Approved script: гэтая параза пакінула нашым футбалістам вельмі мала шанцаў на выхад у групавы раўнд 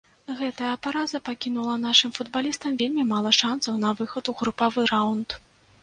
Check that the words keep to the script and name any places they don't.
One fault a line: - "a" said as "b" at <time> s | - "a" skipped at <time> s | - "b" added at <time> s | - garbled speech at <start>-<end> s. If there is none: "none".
none